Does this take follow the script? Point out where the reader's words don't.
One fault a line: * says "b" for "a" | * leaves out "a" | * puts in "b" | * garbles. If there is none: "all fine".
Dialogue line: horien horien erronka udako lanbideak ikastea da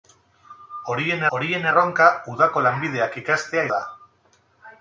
all fine